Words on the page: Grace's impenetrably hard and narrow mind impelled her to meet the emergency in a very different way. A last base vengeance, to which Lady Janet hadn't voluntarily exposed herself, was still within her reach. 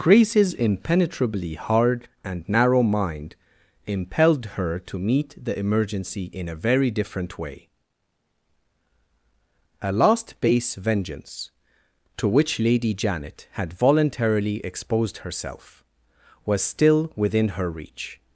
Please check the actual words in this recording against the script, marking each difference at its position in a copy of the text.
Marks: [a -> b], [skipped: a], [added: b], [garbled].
Grace's impenetrably hard and narrow mind impelled her to meet the emergency in a very different way. A last base vengeance, to which Lady Janet [hadn't -> had] voluntarily exposed herself, was still within her reach.